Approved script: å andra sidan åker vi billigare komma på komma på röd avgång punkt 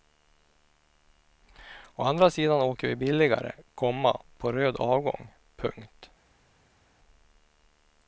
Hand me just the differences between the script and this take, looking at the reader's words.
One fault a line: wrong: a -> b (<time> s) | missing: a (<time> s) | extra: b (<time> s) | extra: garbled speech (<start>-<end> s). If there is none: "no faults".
missing: komma på (4.5 s)